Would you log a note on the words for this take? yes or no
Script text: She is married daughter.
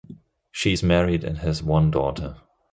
yes